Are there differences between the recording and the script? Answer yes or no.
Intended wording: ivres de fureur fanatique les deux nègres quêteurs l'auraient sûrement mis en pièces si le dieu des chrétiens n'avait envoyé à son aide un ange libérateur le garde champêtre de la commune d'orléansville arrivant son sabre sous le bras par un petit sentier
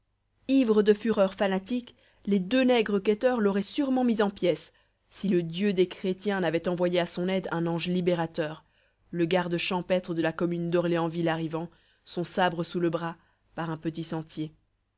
no